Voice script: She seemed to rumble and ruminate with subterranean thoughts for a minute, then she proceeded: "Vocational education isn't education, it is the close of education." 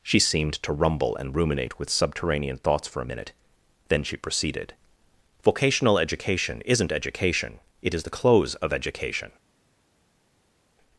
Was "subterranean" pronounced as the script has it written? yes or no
yes